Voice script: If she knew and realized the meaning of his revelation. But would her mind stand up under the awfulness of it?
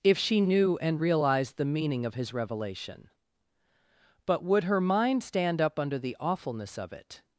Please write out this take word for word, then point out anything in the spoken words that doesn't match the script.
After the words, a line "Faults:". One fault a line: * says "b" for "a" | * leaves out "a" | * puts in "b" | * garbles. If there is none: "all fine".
If she knew and realized the meaning of his revelation. But would her mind stand up under the awfulness of it?
Faults:
all fine